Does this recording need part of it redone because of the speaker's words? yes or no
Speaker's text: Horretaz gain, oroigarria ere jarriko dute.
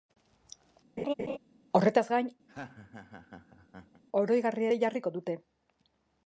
no